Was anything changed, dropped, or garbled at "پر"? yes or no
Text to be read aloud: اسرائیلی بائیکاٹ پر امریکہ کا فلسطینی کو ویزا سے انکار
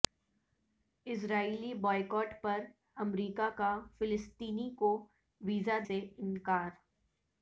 no